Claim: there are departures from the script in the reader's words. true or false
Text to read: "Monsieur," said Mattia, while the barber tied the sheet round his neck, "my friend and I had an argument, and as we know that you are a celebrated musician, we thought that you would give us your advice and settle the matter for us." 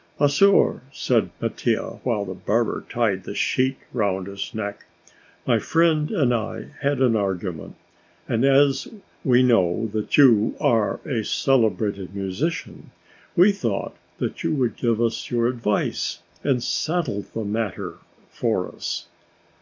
false